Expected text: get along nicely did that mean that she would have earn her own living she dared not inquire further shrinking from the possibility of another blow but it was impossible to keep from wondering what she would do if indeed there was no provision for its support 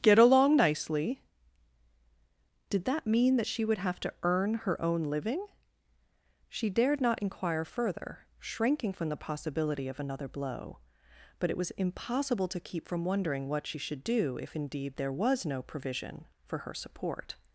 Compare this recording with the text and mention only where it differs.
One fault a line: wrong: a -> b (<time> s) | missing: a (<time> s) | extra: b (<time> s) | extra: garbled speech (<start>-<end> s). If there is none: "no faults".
extra: to (4.0 s)
wrong: would -> should (13.8 s)
wrong: its -> her (16.6 s)